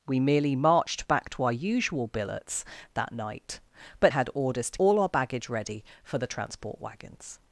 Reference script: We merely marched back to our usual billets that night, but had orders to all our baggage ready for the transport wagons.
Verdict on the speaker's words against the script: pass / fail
pass